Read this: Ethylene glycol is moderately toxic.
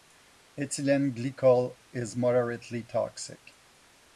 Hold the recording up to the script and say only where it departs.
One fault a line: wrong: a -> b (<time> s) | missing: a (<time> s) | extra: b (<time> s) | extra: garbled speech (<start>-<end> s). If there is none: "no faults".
no faults